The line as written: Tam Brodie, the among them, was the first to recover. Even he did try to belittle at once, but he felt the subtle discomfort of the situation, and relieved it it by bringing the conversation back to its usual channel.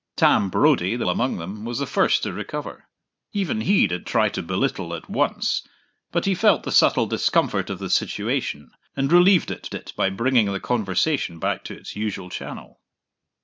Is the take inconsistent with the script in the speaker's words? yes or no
no